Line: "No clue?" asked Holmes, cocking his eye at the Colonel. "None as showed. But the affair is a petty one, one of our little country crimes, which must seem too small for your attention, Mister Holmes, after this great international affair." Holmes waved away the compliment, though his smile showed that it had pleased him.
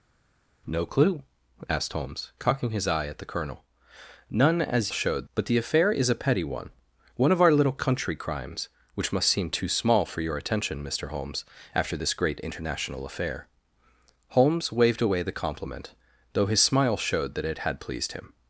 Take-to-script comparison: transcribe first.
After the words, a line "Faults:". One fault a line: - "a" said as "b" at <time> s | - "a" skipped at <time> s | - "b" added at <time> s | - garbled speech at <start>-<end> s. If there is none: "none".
"No clue?" asked Holmes, cocking his eye at the Colonel. "None as showed. But the affair is a petty one, one of our little country crimes, which must seem too small for your attention, Mister Holmes, after this great international affair." Holmes waved away the compliment, though his smile showed that it had pleased him.
Faults:
none